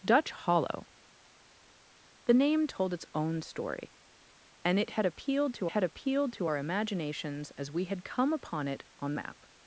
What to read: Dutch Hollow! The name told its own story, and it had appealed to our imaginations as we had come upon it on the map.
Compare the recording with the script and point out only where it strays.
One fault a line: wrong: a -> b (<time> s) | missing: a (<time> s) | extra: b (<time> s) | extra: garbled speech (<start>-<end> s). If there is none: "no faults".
extra: had appealed to (5.7 s)
missing: the (9.1 s)